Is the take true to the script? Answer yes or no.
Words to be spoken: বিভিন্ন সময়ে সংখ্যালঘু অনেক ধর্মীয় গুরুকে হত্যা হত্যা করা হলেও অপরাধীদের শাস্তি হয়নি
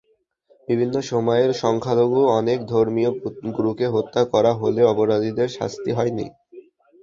no